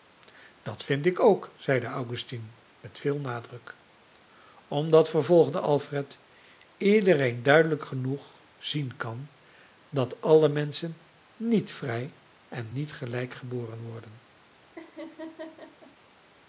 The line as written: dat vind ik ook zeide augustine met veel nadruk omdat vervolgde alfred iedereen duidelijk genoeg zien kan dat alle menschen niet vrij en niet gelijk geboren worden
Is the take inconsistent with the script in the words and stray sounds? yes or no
yes